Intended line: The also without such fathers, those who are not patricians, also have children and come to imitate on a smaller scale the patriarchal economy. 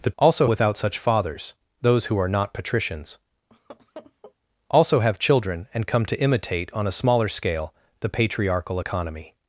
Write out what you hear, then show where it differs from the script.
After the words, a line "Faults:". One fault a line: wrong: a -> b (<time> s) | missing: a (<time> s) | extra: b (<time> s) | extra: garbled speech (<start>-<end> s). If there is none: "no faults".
The also without such fathers, those who are not patricians, also have children and come to imitate on a smaller scale the patriarchal economy.
Faults:
no faults